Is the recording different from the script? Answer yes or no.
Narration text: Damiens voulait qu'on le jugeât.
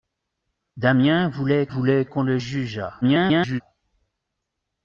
yes